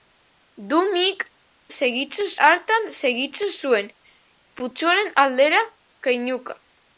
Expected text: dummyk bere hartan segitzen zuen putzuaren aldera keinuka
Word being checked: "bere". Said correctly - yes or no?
no